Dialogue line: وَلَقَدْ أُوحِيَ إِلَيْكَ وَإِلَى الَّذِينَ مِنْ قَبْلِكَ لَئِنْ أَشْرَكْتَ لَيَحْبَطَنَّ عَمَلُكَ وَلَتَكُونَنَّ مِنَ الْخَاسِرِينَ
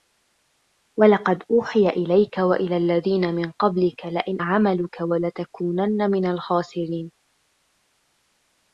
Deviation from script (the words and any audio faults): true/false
true